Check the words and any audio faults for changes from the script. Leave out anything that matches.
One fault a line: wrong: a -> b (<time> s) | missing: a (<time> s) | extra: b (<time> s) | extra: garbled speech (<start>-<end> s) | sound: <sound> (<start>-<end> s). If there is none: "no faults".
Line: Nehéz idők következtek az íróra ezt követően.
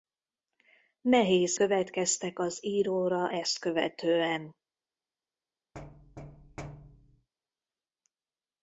missing: idők (1.6 s)
sound: thud (5.7-7.3 s)